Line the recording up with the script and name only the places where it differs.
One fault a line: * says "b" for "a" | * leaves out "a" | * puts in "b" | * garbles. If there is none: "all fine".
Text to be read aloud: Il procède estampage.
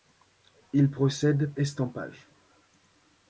all fine